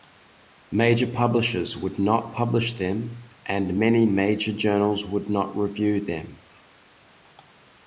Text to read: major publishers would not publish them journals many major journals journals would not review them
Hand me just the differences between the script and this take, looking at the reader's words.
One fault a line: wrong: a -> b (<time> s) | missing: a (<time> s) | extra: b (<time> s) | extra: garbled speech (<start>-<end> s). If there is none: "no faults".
wrong: journals -> and (3.5 s)
missing: journals (5.0 s)